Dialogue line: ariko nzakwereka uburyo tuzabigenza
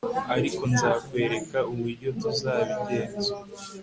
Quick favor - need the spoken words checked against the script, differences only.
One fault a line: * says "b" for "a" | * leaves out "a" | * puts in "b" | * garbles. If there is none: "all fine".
all fine